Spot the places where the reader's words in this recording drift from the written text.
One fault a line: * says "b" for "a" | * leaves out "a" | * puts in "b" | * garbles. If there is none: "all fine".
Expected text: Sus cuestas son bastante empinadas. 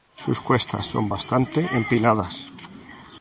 all fine